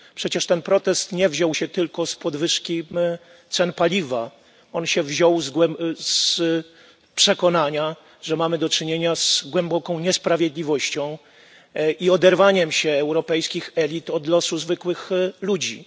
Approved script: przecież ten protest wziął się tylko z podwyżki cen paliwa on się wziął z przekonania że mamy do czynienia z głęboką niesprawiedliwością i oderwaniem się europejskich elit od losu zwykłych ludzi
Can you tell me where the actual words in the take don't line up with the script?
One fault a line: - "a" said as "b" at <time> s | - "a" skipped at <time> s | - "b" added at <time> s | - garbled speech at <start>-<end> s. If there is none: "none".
- "nie" added at 1.1 s